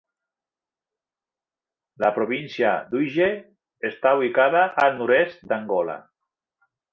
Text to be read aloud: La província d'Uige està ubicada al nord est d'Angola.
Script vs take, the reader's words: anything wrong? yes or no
no